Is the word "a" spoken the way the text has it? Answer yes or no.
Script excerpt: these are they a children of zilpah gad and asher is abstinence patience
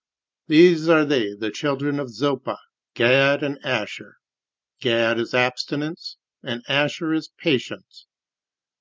no